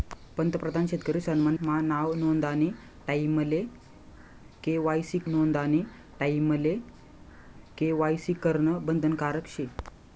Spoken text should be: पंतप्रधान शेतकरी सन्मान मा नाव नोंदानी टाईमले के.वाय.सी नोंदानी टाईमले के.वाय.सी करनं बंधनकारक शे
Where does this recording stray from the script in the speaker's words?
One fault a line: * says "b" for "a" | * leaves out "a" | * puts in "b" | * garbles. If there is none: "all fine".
all fine